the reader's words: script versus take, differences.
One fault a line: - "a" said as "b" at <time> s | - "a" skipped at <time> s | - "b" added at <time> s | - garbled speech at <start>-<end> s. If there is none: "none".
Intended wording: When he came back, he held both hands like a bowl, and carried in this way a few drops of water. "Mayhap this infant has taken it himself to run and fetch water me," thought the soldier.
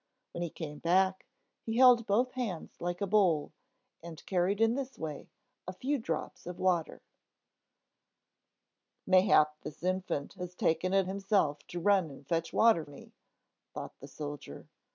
none